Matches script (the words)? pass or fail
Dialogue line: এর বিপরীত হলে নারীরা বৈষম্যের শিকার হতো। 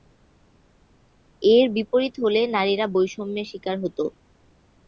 pass